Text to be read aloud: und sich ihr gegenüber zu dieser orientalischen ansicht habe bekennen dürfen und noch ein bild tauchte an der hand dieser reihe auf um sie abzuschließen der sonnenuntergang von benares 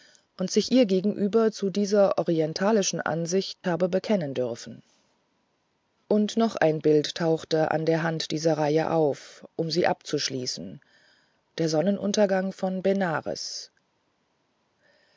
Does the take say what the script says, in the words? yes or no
yes